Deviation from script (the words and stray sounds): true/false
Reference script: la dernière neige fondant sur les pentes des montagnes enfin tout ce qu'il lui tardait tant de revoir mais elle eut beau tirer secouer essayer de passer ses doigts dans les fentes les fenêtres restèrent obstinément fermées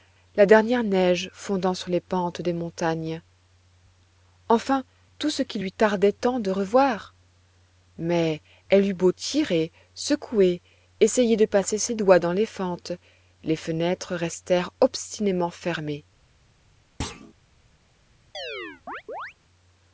true